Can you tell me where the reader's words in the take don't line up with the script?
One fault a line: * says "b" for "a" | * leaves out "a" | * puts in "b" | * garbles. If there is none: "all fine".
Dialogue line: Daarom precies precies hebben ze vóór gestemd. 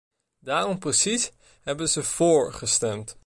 * leaves out "precies"